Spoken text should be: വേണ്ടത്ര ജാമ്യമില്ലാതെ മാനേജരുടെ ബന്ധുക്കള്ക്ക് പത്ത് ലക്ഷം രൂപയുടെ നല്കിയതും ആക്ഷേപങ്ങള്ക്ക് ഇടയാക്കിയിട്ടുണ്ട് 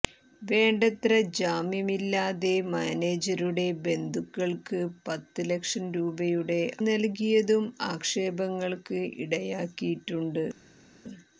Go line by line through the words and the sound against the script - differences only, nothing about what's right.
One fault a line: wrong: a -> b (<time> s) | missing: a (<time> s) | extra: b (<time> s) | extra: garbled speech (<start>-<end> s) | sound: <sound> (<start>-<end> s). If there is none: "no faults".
no faults